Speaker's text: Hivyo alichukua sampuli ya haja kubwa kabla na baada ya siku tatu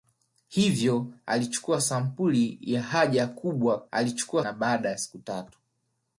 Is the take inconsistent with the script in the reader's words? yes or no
yes